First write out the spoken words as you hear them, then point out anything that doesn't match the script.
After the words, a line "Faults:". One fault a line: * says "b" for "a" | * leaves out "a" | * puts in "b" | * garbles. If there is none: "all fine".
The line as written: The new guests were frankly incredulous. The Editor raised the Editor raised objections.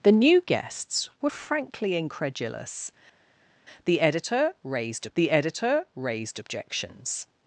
The new guests were frankly incredulous. The Editor raised the Editor raised objections.
Faults:
all fine